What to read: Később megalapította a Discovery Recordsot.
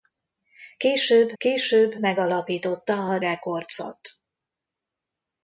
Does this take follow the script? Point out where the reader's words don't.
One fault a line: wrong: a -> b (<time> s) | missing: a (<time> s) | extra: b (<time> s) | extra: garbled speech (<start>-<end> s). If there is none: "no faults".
extra: később (1.4 s)
missing: Discovery (3.2 s)